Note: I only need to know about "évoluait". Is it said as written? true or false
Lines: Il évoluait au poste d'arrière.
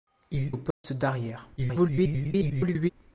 false